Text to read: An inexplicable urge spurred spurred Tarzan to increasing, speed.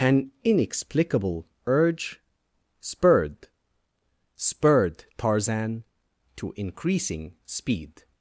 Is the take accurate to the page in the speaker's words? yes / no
yes